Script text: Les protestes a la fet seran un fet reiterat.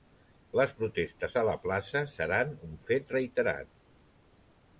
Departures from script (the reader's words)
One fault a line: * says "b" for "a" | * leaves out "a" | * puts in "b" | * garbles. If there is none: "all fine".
* says "plaça" for "fet"